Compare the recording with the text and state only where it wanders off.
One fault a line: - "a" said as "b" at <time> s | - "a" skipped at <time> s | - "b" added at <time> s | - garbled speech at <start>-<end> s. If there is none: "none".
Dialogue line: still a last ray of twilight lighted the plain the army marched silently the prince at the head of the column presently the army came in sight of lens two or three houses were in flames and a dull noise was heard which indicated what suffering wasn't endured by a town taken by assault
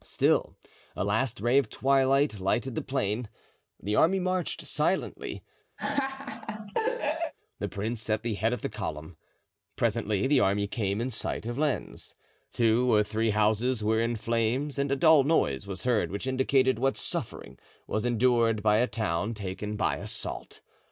- "wasn't" said as "was" at 17.9 s